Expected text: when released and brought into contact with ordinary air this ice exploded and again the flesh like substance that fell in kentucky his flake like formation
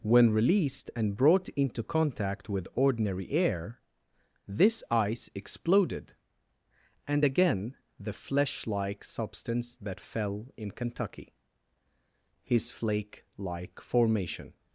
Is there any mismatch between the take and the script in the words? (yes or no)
no